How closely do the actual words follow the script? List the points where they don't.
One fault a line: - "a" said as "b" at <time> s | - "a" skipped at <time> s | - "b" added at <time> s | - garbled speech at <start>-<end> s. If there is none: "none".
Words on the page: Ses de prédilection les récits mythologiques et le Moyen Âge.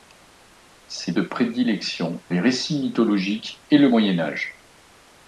none